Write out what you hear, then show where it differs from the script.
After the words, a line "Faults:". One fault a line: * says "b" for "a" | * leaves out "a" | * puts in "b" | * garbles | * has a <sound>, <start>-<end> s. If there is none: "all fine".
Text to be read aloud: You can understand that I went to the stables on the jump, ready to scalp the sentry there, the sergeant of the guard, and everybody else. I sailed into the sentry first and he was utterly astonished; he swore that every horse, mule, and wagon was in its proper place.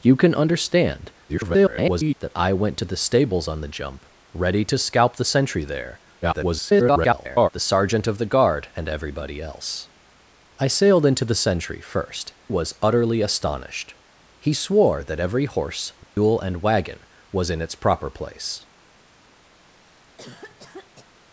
You can understand [garbled] that I went to the stables on the jump, ready to scalp the sentry there, [garbled] the sergeant of the guard, and everybody else. I sailed into the sentry first was utterly astonished; he swore that every horse, mule, and wagon was in its proper place.
Faults:
* garbles
* garbles
* leaves out "and he"
* has a dropout, 16.0-16.2 s
* has a cough, 19.6-21.1 s